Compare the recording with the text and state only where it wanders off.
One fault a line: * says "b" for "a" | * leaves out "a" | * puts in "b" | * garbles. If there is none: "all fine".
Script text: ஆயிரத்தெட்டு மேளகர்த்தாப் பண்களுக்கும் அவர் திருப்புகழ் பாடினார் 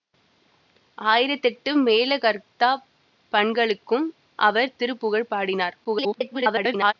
* garbles